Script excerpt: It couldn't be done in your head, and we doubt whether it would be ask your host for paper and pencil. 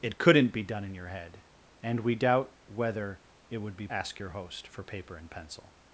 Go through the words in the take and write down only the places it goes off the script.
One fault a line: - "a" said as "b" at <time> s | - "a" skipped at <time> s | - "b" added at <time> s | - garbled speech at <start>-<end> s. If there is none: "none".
none